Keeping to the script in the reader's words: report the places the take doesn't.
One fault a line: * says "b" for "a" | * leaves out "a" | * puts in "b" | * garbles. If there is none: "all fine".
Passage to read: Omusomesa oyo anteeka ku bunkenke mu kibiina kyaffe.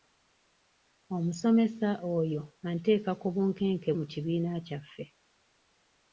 all fine